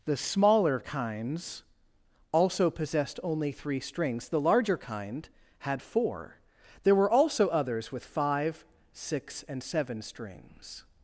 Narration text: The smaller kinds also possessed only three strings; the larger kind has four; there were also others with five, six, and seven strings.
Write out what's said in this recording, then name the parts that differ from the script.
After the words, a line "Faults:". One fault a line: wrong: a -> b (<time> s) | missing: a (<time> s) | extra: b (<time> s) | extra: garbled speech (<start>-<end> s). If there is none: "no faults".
The smaller kinds also possessed only three strings; the larger kind had four; there were also others with five, six, and seven strings.
Faults:
wrong: has -> had (5.6 s)